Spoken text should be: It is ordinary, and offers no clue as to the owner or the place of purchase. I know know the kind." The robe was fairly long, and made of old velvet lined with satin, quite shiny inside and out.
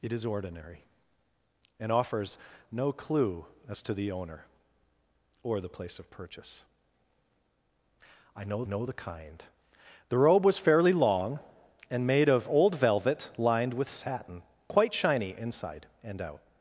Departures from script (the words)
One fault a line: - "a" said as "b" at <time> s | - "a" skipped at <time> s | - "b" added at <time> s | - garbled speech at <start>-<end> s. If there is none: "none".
none